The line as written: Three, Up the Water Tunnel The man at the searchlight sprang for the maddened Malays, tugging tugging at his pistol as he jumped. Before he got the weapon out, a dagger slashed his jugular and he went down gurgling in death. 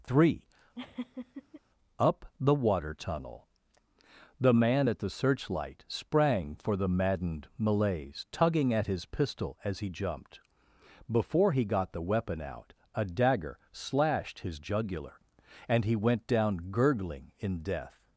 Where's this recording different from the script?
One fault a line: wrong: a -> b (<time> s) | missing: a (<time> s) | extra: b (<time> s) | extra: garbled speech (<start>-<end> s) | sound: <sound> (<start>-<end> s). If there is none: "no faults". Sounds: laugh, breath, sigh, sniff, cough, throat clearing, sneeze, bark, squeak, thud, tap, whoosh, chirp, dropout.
sound: laugh (0.7-1.6 s)
missing: tugging (8.7 s)